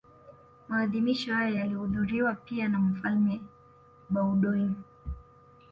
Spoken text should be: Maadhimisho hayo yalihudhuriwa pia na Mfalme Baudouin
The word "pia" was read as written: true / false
true